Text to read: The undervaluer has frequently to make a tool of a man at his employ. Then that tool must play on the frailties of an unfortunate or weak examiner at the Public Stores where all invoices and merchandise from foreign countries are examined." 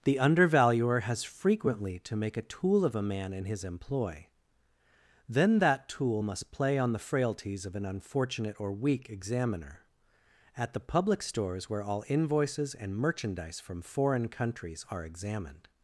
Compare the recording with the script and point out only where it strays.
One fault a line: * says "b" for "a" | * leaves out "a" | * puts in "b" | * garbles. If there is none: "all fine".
* says "in" for "at"